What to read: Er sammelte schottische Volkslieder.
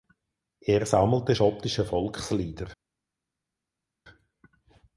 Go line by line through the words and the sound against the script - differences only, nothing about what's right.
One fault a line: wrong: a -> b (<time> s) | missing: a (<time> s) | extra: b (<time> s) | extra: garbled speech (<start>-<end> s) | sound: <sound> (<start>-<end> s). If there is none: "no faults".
no faults